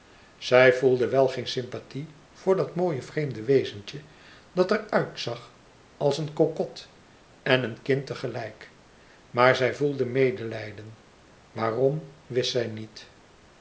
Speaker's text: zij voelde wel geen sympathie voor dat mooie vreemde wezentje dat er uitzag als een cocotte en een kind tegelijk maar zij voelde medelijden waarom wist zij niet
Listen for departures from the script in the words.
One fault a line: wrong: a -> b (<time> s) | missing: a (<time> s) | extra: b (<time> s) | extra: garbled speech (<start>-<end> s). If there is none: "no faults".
no faults